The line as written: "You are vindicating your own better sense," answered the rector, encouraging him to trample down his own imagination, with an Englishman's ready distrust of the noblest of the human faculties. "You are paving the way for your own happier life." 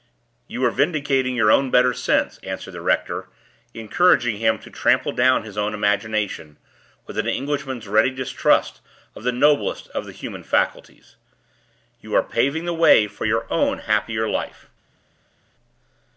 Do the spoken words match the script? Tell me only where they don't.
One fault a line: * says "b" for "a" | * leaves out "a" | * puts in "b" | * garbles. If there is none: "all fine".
all fine